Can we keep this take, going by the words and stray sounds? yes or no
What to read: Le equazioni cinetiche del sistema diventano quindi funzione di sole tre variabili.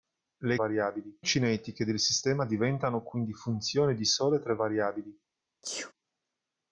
no